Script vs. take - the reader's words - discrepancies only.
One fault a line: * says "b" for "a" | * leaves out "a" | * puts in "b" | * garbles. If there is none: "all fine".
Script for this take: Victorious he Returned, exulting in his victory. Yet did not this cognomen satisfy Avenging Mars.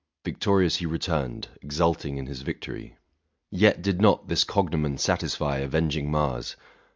all fine